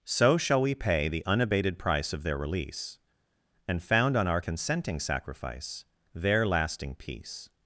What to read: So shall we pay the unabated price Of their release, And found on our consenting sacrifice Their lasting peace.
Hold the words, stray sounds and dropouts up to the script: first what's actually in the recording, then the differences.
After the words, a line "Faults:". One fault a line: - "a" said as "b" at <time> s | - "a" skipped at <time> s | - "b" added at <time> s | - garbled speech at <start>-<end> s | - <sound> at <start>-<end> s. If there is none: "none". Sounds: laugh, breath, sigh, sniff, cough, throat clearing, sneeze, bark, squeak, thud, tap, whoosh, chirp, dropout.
So shall we pay the unabated price Of their release, And found on our consenting sacrifice Their lasting peace.
Faults:
none